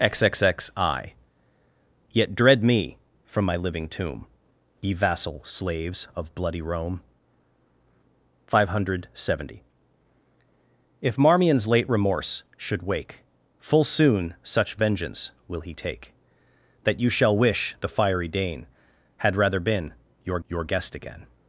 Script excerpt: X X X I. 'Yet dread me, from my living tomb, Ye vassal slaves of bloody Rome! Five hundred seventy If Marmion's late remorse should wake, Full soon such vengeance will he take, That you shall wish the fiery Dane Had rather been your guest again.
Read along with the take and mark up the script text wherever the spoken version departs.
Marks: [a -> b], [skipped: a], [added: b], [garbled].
X X X I. 'Yet dread me, from my living tomb, Ye vassal slaves of bloody Rome! Five hundred seventy If Marmion's late remorse should wake, Full soon such vengeance will he take, That you shall wish the fiery Dane Had rather been your [added: your] guest again.